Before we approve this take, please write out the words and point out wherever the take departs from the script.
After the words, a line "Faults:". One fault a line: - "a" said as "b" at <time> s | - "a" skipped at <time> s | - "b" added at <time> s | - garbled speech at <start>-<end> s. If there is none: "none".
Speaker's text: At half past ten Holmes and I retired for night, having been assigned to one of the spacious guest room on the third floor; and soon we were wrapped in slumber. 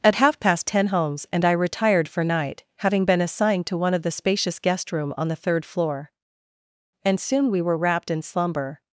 At half past ten Holmes and I retired for night, having been assigned to one of the spacious guest room on the third floor; and soon we were wrapped in slumber.
Faults:
none